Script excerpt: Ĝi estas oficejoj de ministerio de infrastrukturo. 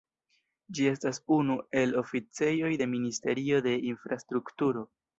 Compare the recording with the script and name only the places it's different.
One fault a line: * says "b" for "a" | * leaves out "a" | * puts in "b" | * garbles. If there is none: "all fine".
* puts in "unu el"